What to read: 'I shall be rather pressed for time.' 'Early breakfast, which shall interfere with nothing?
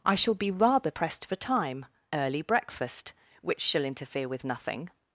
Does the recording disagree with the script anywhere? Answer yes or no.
no